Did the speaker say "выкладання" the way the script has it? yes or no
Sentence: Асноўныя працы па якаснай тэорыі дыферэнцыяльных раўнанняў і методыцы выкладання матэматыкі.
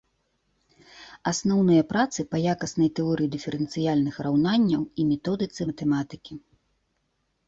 no